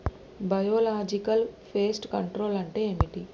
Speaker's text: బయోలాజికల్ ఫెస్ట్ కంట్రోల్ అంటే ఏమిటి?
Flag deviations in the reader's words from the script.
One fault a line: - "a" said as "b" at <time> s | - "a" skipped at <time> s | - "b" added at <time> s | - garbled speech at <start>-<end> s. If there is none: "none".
none